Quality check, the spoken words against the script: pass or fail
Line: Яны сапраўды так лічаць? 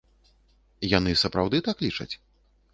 pass